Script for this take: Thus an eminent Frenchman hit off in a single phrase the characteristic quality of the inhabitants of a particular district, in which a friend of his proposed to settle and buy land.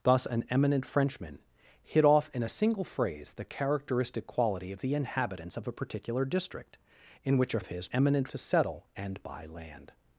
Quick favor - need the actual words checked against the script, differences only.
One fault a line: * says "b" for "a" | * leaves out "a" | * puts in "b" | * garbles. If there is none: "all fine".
* leaves out "friend"
* says "eminent" for "proposed"